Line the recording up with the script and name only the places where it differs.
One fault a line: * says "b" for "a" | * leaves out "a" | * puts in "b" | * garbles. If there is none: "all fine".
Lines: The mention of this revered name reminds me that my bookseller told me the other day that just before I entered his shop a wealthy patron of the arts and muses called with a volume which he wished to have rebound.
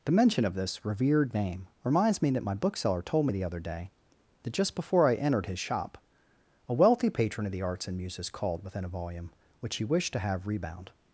* says "within" for "with"